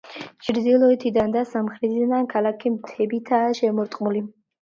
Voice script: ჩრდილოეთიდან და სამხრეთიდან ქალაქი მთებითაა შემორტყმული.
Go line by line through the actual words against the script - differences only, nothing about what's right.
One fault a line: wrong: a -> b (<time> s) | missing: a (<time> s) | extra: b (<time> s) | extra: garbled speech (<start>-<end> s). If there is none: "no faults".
no faults